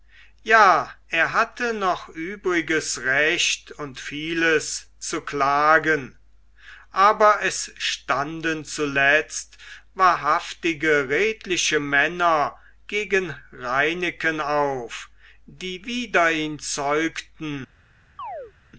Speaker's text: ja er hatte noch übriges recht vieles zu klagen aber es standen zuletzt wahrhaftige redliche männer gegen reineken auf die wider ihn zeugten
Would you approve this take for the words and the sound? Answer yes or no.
no